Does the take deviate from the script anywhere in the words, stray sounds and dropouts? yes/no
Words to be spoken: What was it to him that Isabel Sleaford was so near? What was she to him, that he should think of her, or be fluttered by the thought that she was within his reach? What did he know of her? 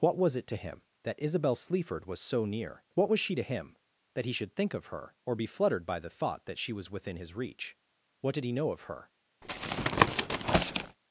yes